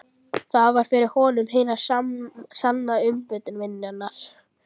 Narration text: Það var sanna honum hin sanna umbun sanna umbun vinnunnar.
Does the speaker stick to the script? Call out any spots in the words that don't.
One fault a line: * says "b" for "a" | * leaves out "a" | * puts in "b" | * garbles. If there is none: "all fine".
* says "fyrir" for "sanna"
* leaves out "sanna umbun"